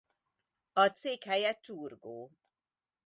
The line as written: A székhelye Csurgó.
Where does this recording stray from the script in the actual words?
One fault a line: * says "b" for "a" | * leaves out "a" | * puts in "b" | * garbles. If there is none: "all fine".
all fine